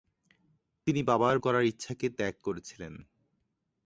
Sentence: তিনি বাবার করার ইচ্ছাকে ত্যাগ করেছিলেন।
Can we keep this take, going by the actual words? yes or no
yes